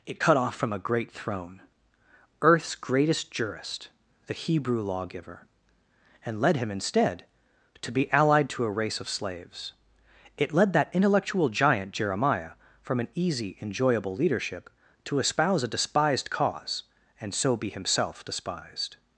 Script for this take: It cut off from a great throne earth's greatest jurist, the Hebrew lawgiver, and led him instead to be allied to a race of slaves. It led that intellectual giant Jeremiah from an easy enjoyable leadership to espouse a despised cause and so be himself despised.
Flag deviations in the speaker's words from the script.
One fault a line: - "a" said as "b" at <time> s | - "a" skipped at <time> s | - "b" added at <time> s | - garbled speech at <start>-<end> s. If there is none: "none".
none